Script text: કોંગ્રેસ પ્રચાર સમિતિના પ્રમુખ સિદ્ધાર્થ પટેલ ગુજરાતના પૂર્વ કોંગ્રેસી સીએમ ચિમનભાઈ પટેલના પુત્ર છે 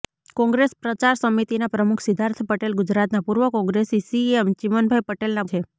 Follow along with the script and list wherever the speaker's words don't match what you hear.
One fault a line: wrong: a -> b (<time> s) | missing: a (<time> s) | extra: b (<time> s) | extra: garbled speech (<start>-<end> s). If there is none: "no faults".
missing: પુત્ર (5.5 s)